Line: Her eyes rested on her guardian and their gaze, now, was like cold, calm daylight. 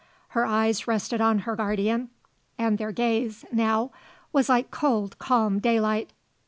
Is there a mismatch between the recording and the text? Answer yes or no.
no